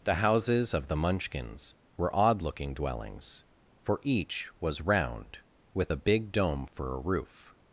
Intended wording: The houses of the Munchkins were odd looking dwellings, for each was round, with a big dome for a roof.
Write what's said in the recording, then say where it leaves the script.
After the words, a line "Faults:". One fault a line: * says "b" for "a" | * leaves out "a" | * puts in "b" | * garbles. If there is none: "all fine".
The houses of the Munchkins were odd looking dwellings, for each was round, with a big dome for a roof.
Faults:
all fine